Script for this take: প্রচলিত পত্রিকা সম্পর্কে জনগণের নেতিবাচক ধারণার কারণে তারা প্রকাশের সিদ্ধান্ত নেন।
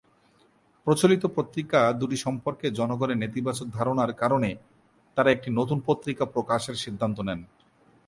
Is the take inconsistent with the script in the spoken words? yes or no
yes